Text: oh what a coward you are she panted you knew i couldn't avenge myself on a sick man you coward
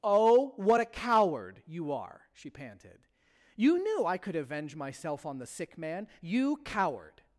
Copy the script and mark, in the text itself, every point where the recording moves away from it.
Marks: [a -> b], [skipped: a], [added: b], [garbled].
oh what a coward you are she panted you knew i [couldn't -> could] avenge myself on [a -> the] sick man you coward